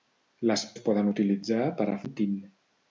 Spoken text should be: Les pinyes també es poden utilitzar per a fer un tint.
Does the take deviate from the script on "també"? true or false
true